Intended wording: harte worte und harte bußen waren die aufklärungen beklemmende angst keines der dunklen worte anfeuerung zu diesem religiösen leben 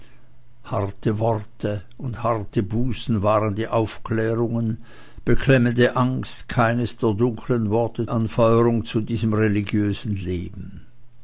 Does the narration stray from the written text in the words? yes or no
no